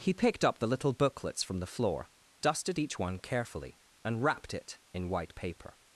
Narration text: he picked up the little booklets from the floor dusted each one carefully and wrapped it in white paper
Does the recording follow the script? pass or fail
pass